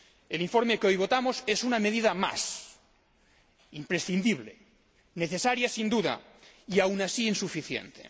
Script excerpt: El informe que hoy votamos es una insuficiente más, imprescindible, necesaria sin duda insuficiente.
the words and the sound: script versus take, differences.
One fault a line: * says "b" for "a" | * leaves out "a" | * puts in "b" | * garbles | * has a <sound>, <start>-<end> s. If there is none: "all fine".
* says "medida" for "insuficiente"
* puts in "y aun así"